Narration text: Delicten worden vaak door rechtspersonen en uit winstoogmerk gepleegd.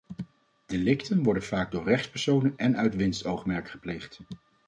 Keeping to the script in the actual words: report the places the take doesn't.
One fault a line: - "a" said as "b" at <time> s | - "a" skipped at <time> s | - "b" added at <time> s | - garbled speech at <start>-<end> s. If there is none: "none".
none